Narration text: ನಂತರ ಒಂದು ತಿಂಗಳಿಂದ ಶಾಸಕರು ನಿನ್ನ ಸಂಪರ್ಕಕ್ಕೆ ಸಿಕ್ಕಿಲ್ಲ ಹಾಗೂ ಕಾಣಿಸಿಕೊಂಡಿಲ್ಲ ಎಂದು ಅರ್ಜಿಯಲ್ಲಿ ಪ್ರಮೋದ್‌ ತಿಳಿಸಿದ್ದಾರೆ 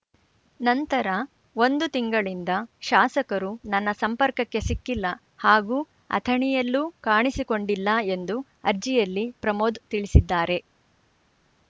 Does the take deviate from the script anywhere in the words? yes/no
yes